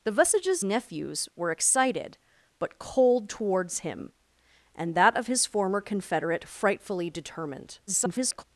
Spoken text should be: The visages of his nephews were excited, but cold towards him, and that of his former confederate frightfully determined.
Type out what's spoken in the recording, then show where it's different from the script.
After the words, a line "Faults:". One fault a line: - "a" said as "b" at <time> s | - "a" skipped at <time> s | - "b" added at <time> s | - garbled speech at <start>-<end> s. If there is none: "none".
The visages nephews were excited, but cold towards him, and that of his former confederate frightfully determined. [garbled]
Faults:
- "of his" skipped at 0.6 s
- garbled speech at 7.9-8.4 s